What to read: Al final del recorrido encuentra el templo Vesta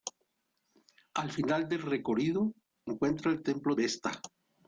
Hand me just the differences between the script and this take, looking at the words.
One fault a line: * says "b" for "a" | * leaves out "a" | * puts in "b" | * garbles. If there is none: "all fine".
all fine